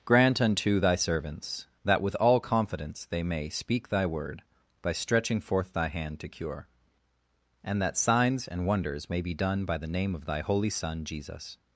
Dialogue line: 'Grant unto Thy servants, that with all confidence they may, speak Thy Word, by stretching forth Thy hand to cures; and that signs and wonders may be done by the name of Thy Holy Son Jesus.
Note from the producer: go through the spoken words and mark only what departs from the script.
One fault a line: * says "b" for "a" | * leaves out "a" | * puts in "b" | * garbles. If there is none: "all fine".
* says "cure" for "cures"